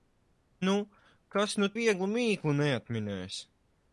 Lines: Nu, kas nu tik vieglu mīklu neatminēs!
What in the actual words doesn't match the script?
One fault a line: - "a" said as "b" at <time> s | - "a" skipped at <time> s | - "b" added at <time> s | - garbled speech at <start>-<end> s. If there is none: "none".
- "tik" skipped at 1.7 s